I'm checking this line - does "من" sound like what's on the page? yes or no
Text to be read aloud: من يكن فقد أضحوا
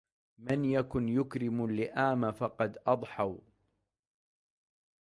yes